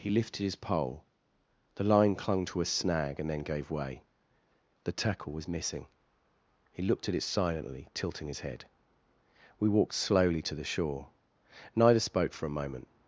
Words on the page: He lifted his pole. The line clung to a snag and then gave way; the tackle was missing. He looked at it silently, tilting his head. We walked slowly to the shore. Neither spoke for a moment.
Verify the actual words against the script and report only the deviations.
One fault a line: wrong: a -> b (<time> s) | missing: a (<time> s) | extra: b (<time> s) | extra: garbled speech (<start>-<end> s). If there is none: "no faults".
no faults